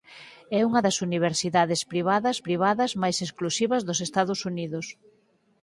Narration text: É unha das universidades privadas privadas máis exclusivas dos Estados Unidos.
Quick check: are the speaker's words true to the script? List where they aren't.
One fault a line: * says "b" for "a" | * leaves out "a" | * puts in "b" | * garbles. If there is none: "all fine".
all fine